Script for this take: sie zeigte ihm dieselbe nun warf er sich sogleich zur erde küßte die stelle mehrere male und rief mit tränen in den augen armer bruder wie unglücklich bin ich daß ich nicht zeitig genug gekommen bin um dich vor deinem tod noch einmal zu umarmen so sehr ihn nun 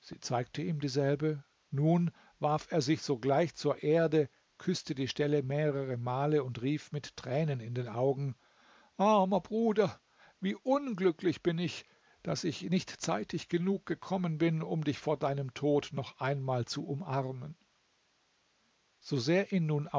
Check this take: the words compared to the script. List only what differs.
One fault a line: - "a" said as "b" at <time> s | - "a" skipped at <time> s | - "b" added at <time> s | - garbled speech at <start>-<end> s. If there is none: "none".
none